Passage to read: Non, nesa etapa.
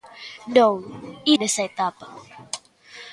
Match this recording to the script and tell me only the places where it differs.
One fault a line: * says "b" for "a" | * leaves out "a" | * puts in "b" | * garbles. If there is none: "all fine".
all fine